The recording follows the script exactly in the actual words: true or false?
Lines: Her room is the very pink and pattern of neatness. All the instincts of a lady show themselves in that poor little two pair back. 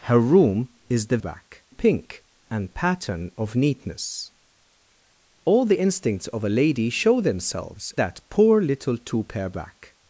false